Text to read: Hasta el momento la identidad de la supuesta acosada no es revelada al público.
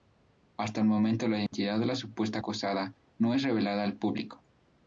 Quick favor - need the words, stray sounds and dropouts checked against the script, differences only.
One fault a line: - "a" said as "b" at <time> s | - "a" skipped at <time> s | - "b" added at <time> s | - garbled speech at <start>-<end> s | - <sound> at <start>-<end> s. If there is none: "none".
- dropout at 1.5-1.5 s